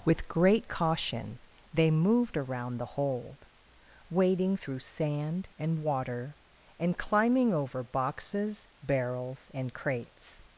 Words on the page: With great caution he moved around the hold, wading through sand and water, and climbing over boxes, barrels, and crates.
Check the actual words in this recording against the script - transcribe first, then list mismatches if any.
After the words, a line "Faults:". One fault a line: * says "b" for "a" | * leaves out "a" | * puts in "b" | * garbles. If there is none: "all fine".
With great caution they moved around the hold, wading through sand and water, and climbing over boxes, barrels, and crates.
Faults:
* says "they" for "he"